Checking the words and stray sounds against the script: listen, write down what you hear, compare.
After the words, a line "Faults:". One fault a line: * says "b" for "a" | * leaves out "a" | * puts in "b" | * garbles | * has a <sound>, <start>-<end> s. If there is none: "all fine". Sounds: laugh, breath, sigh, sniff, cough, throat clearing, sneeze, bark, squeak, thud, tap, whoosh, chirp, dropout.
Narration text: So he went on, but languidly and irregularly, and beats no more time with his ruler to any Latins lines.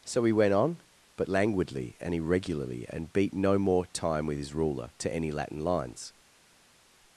So he went on, but languidly and irregularly, and beat no more time with his ruler to any Latin lines.
Faults:
* says "beat" for "beats"
* says "Latin" for "Latins"